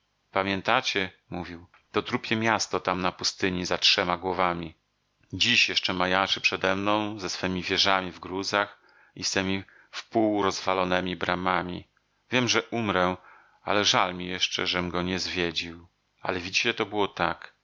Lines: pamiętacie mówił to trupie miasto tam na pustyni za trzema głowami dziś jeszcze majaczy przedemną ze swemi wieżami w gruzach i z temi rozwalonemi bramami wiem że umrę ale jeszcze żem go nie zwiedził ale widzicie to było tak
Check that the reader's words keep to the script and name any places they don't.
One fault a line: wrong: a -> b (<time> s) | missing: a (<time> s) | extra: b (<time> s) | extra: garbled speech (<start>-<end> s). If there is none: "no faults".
extra: wpół (9.9 s)
extra: żal mi (13.8 s)